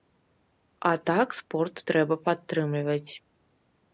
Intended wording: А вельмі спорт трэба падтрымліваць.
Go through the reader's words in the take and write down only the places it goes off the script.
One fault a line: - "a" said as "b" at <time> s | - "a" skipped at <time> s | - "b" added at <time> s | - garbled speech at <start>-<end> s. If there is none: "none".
- "вельмі" said as "так" at 1.1 s